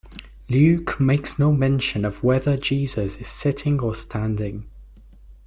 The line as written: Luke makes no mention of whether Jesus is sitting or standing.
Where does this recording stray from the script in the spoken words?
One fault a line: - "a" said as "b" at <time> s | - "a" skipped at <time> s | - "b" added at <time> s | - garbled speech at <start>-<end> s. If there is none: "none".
none